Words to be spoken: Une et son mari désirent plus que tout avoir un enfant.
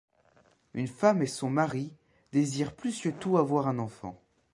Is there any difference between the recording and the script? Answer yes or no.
yes